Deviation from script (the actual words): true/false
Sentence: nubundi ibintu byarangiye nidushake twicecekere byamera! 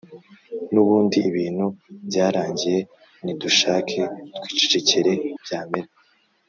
false